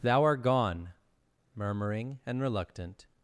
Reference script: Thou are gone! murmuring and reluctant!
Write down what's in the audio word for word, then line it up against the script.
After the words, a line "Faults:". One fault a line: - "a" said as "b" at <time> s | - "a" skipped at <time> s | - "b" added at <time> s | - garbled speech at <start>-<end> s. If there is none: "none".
Thou art gone! murmuring and reluctant!
Faults:
- "are" said as "art" at 0.2 s